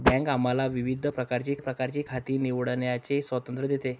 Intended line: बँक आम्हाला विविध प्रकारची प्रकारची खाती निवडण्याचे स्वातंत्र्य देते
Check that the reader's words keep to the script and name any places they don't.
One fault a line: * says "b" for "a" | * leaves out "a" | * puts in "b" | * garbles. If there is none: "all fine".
all fine